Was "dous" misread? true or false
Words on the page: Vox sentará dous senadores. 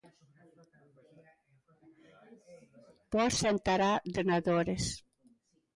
true